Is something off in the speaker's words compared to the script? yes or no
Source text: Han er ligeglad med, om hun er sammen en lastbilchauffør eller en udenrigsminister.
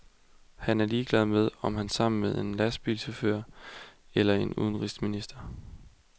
yes